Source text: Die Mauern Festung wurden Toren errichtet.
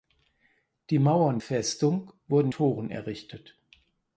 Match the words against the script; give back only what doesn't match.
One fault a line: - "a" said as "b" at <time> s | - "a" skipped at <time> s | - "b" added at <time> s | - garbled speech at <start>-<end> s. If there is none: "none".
none